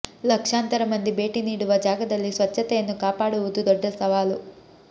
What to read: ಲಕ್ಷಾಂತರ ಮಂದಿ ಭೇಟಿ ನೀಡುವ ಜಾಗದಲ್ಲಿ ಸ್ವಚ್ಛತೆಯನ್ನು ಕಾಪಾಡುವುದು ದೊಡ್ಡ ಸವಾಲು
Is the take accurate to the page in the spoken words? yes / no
yes